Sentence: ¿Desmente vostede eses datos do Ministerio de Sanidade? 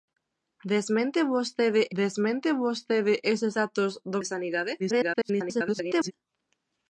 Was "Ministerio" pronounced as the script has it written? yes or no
no